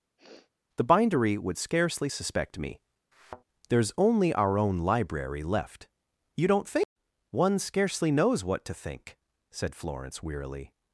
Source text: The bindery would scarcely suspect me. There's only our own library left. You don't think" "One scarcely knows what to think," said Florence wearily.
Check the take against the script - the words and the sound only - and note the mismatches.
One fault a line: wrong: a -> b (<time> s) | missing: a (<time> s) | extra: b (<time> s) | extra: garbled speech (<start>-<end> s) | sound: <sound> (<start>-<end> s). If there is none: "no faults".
sound: sniff (0.2-0.5 s)
sound: thud (3.1-3.4 s)